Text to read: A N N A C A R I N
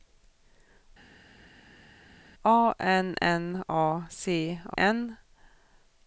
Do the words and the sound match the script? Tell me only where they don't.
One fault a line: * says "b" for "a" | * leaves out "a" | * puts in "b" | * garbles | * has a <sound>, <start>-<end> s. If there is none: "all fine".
* leaves out "R I"